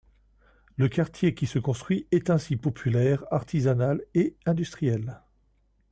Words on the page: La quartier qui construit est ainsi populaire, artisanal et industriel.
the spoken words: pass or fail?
fail